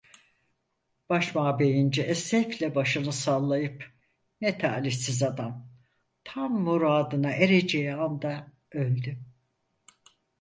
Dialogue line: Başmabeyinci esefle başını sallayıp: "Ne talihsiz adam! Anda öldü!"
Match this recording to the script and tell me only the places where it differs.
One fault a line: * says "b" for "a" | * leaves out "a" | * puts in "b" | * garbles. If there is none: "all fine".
* puts in "Tam muradına ereceği"